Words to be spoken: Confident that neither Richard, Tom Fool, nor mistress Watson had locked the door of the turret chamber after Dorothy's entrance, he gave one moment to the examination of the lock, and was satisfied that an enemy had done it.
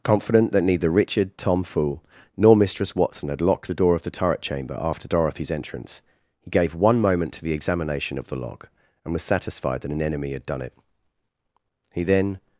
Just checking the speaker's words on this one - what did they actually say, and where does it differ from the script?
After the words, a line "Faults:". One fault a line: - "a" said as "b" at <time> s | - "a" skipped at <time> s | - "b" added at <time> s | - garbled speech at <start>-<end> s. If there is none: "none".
Confident that neither Richard, Tom Fool, nor mistress Watson had locked the door of the turret chamber after Dorothy's entrance, he gave one moment to the examination of the lock, and was satisfied that an enemy had done it. He then
Faults:
- "He then" added at 11.9 s